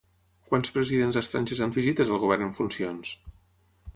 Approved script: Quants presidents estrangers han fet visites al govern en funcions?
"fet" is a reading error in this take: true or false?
true